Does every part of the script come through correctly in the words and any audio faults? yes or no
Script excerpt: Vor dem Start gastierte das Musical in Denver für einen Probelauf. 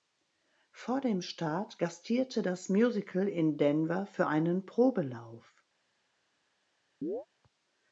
no